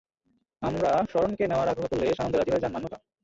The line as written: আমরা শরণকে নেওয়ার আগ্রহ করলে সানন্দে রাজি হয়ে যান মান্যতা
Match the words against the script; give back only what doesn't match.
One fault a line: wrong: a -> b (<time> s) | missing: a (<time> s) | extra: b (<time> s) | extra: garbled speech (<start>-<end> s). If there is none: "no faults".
no faults